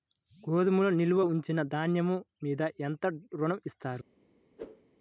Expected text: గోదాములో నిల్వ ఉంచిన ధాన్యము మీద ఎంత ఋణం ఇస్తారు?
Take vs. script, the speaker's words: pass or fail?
pass